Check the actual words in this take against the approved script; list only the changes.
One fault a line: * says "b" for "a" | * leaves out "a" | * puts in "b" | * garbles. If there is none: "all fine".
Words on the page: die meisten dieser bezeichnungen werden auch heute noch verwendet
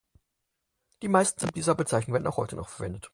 all fine